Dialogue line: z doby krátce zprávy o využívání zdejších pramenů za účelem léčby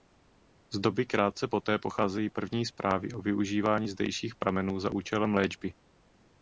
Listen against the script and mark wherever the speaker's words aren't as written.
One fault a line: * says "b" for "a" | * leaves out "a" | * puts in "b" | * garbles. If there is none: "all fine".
* puts in "poté pocházejí první"